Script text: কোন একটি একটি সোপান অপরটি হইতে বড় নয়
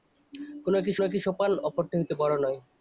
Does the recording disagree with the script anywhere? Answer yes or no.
no